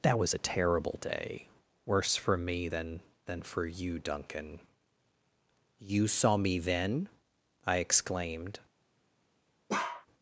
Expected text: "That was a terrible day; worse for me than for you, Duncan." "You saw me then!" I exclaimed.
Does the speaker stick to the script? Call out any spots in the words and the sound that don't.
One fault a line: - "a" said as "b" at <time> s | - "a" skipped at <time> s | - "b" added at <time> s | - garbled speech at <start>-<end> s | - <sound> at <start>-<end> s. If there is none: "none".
- "than" added at 3.3 s
- bark at 9.7-10.1 s